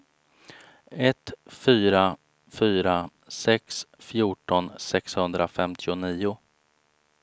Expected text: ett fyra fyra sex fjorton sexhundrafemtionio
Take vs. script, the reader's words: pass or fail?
pass